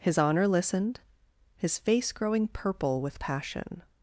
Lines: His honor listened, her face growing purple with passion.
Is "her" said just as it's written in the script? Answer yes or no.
no